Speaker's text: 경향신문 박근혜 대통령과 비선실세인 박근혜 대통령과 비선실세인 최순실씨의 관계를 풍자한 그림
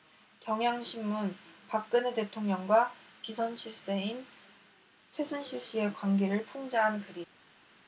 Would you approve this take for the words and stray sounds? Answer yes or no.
no